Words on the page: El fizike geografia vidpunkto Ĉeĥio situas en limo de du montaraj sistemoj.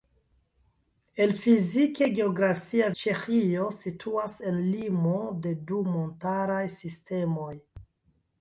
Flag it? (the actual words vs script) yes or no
yes